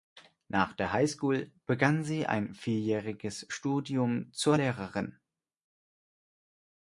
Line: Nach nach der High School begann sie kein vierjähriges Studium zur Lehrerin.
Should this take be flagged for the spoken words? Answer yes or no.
yes